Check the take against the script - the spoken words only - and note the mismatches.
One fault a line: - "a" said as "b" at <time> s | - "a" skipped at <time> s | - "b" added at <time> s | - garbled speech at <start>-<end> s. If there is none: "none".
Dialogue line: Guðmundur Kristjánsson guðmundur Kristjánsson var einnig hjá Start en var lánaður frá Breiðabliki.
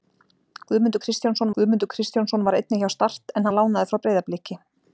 none